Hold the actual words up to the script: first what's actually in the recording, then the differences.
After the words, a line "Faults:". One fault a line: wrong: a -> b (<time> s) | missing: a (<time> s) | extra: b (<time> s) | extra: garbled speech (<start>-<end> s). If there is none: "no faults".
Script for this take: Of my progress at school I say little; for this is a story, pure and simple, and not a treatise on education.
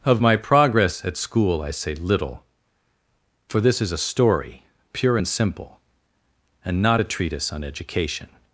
Of my progress at school I say little; for this is a story, pure and simple, and not a treatise on education.
Faults:
no faults